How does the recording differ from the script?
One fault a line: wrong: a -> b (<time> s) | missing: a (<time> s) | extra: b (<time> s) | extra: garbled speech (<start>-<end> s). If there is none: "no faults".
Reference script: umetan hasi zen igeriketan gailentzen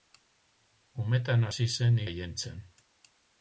missing: igeriketan (2.0 s)